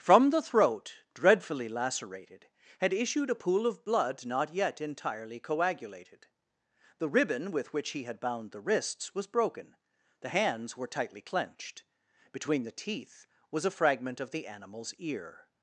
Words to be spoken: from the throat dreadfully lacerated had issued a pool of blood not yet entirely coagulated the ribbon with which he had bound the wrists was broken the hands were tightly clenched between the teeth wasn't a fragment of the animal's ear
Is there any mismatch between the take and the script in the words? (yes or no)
yes